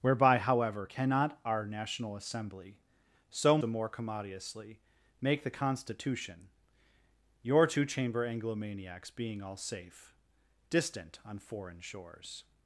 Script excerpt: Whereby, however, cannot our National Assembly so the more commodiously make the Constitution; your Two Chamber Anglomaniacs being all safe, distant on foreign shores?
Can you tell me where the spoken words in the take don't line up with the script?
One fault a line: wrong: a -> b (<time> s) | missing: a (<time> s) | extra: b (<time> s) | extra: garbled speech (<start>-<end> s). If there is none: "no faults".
no faults